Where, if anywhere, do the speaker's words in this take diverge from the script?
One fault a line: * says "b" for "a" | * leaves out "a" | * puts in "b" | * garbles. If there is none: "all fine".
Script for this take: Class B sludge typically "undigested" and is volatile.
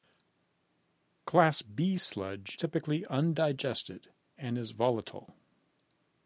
all fine